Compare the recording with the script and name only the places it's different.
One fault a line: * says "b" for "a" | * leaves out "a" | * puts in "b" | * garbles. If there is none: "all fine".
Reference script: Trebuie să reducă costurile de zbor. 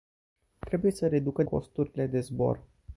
all fine